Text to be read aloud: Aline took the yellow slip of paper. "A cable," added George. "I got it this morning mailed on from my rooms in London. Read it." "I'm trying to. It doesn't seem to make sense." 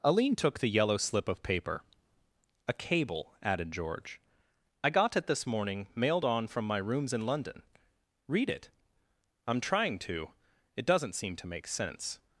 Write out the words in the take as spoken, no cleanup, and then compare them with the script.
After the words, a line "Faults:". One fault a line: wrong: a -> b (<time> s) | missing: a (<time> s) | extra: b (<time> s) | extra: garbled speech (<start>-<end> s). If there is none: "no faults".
Aline took the yellow slip of paper. "A cable," added George. "I got it this morning mailed on from my rooms in London. Read it." "I'm trying to. It doesn't seem to make sense."
Faults:
no faults